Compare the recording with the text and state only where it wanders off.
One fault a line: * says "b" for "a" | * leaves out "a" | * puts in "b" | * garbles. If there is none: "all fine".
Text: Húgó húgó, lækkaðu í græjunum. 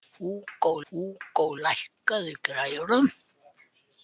all fine